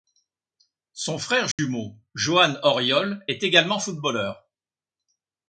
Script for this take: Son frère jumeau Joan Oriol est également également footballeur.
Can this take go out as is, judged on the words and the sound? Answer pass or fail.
fail